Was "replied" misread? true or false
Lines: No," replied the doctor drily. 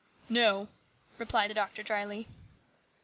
false